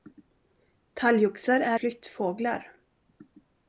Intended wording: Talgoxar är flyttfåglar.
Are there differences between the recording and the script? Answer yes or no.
no